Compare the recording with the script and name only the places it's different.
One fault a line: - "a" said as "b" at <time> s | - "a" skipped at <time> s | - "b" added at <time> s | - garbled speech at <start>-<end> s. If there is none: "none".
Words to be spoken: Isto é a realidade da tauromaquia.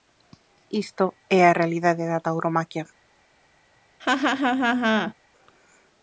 none